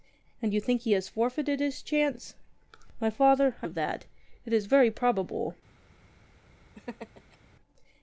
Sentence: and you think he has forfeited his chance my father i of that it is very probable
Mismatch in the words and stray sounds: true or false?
true